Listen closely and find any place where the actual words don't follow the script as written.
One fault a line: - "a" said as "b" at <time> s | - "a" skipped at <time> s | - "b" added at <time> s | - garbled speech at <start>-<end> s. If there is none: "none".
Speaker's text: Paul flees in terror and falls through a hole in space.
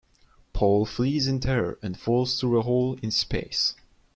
none